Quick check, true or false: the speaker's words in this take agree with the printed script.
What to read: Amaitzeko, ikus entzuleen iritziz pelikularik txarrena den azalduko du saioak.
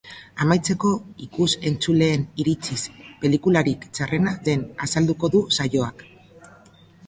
true